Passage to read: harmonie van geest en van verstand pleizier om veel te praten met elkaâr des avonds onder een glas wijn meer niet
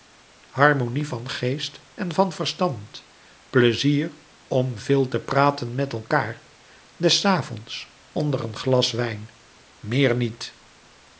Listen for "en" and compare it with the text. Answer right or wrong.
right